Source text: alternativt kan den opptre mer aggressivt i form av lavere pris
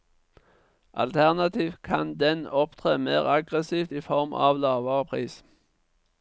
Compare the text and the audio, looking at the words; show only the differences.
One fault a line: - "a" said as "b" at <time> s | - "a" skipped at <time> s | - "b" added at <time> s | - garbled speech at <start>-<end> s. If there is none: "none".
none